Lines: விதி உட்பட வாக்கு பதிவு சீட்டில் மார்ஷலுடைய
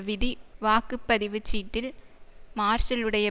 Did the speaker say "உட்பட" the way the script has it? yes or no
no